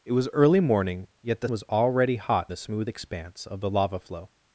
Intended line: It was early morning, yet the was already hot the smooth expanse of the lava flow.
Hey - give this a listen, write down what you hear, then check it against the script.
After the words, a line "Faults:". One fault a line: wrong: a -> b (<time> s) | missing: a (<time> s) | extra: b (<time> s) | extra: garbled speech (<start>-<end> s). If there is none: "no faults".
It was early morning, yet the was already hot the smooth expanse of the lava flow.
Faults:
no faults